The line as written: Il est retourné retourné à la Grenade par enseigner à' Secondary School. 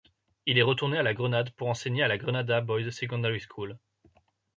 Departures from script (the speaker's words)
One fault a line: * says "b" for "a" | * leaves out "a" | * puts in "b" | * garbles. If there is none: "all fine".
* leaves out "retourné"
* says "pour" for "par"
* puts in "la Grenada Boys"